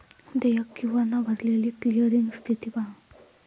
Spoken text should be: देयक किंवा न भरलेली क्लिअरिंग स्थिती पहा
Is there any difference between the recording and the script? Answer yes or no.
no